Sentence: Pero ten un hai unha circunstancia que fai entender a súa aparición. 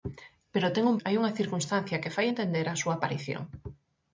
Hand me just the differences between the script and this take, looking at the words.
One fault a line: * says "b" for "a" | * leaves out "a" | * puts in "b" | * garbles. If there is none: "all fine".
all fine